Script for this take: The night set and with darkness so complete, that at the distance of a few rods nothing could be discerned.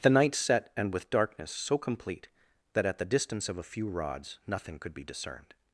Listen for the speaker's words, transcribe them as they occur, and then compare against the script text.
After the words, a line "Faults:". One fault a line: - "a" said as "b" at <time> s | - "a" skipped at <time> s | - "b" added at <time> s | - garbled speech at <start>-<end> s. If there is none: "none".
The night set and with darkness so complete, that at the distance of a few rods nothing could be discerned.
Faults:
none